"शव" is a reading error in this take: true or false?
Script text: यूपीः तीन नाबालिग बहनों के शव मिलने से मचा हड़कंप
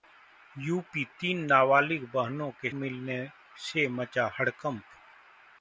true